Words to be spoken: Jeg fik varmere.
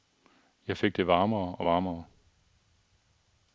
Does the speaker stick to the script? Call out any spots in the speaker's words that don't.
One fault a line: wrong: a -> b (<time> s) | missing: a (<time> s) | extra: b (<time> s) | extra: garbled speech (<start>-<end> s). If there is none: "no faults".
extra: det varmere og (1.0 s)